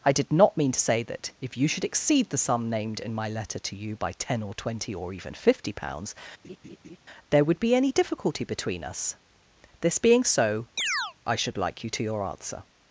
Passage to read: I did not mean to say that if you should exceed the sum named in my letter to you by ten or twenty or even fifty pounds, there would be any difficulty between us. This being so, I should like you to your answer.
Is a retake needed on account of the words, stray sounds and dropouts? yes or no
yes